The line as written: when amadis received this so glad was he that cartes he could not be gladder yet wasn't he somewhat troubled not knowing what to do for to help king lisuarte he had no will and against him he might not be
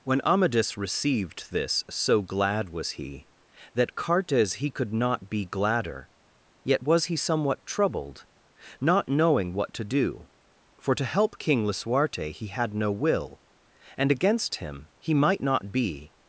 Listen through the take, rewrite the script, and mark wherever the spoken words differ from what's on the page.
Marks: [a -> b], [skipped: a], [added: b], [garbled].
when amadis received this so glad was he that cartes he could not be gladder yet [wasn't -> was] he somewhat troubled not knowing what to do for to help king lisuarte he had no will and against him he might not be